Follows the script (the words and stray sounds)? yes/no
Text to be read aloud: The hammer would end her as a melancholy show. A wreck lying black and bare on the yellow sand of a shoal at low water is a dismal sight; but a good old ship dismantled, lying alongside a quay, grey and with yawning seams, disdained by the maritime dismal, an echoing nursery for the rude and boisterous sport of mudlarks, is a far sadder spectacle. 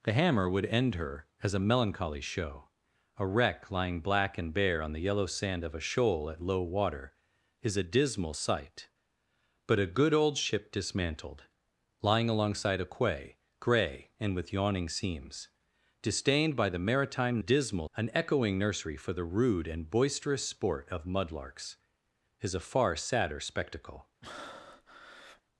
no